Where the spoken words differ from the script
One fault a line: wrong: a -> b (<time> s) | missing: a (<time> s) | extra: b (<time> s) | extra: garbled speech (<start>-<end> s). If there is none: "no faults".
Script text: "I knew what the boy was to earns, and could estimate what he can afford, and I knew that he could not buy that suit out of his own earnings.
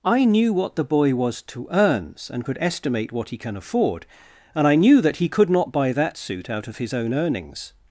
no faults